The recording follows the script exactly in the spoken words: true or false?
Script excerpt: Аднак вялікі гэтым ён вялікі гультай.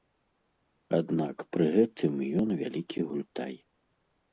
false